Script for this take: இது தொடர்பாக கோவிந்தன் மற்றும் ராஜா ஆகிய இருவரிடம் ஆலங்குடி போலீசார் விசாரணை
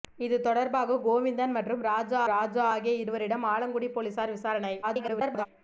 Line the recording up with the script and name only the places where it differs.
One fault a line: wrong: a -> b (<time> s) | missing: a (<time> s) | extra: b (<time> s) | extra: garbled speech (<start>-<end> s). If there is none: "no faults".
extra: ராஜா (2.3 s)
extra: garbled speech (4.8-5.5 s)